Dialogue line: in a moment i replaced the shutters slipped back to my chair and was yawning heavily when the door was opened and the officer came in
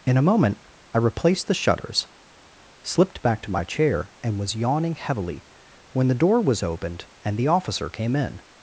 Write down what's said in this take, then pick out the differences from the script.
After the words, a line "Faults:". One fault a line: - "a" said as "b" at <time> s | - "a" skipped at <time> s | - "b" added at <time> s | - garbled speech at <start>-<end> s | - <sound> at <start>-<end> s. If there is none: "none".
in a moment i replaced the shutters slipped back to my chair and was yawning heavily when the door was opened and the officer came in
Faults:
none